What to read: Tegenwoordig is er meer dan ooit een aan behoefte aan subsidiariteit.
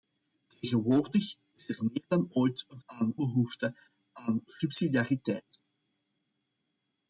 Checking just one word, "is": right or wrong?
right